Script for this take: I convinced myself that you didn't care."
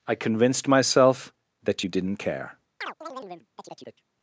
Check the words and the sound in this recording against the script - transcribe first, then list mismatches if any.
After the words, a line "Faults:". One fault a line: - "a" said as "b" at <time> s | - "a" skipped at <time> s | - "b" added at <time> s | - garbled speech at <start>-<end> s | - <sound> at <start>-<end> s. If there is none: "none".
I convinced myself that you didn't care."
Faults:
- chirp at 2.8-4.0 s